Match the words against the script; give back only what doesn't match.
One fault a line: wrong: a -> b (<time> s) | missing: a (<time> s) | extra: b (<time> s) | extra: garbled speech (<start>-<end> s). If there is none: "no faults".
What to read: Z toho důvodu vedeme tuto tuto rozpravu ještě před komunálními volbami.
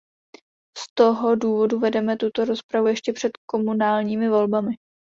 missing: tuto (2.4 s)